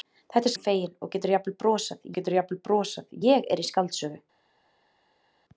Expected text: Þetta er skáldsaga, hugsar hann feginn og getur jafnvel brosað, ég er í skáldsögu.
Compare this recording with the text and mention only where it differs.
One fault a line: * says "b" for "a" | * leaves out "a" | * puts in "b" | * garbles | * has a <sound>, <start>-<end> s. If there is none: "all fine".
* leaves out "skáldsaga hugsar"
* puts in "getur jafnvel brosað"